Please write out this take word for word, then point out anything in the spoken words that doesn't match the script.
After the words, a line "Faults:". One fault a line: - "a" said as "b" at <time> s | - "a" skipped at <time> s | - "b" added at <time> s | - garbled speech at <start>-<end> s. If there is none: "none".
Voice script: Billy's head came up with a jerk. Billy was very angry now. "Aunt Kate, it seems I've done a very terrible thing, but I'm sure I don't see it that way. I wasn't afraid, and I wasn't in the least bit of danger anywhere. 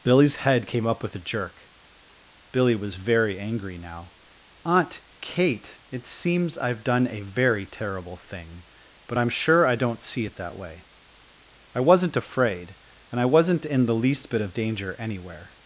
Billy's head came up with a jerk. Billy was very angry now. "Aunt Kate, it seems I've done a very terrible thing, but I'm sure I don't see it that way. I wasn't afraid, and I wasn't in the least bit of danger anywhere.
Faults:
none